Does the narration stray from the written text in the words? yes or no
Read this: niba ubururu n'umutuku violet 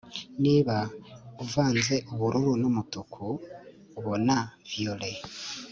yes